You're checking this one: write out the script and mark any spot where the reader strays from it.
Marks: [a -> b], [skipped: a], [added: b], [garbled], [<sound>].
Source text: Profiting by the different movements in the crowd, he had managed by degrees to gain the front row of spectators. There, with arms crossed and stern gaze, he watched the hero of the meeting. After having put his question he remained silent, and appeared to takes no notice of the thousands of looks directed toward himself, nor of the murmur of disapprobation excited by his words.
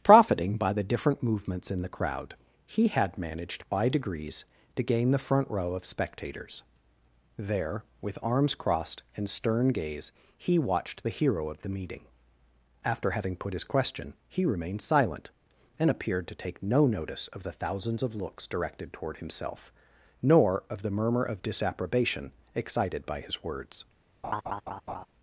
Profiting by the different movements in the crowd, he had managed by degrees to gain the front row of spectators. There, with arms crossed and stern gaze, he watched the hero of the meeting. After having put his question he remained silent, and appeared to [takes -> take] no notice of the thousands of looks directed toward himself, nor of the murmur of disapprobation excited by his words. [laugh]